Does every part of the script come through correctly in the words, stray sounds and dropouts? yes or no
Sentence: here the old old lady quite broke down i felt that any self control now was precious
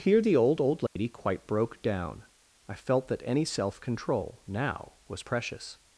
no